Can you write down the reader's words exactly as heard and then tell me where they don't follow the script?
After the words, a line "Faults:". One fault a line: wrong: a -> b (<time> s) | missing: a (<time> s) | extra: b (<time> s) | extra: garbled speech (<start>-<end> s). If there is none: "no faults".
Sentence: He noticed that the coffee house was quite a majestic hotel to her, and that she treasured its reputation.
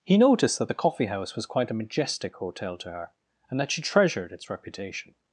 He noticed that the coffee house was quite a majestic hotel to her, and that she treasured its reputation.
Faults:
no faults